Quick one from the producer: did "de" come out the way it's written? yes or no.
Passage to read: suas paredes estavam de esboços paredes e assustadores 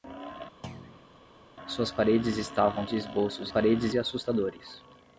yes